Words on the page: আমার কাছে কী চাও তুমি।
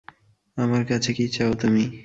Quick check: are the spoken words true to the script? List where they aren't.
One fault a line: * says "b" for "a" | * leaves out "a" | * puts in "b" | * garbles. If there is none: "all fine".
all fine